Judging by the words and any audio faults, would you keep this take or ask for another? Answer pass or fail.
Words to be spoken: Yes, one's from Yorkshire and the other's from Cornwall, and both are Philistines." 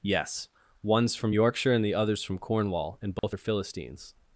fail